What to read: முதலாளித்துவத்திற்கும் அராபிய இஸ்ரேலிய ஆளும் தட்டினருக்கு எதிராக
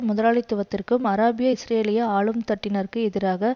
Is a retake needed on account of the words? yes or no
no